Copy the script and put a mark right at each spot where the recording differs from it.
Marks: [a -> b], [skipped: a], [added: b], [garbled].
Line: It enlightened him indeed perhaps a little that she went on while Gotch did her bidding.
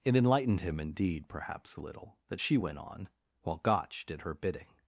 It enlightened him indeed perhaps a little that she went on while Gotch did her bidding.